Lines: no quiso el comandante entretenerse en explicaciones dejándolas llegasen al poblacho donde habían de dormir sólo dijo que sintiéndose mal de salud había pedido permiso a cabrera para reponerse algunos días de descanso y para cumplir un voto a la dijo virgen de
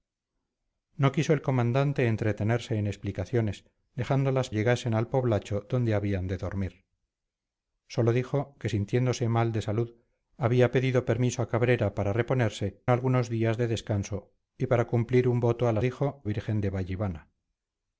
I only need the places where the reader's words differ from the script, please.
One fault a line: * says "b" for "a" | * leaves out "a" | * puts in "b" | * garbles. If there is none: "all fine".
all fine